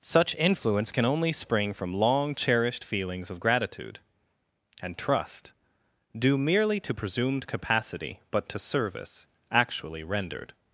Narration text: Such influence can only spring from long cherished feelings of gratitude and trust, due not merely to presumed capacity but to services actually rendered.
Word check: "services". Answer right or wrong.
wrong